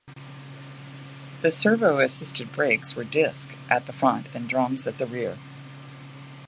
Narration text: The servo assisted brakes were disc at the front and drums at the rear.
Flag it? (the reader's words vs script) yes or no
no